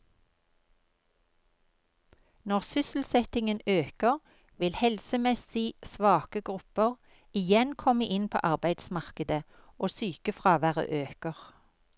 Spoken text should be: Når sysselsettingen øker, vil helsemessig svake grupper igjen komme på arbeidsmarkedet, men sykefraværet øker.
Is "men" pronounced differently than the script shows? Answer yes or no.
yes